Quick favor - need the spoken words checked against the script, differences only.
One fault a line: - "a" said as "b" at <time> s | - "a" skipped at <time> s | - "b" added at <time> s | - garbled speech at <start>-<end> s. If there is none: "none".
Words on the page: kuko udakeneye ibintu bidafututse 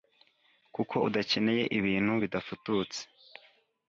none